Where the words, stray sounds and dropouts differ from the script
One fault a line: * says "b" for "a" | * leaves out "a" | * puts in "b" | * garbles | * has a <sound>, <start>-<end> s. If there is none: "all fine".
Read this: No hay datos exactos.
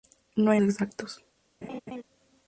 * leaves out "datos"
* has a laugh, 1.6-2.0 s